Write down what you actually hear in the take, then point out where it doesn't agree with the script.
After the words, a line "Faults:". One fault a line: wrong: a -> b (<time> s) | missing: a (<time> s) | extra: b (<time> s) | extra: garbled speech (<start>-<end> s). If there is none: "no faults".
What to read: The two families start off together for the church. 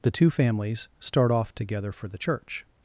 The two families start off together for the church.
Faults:
no faults